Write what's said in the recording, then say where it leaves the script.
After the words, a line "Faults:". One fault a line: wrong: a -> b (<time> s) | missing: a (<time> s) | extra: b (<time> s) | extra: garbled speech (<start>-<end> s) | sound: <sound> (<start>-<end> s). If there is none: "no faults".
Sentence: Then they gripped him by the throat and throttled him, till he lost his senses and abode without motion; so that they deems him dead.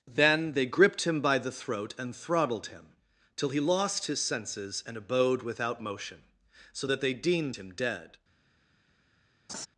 Then they gripped him by the throat and throttled him, till he lost his senses and abode without motion; so that they deemed him dead.
Faults:
wrong: deems -> deemed (7.1 s)
sound: laugh (9.5-9.7 s)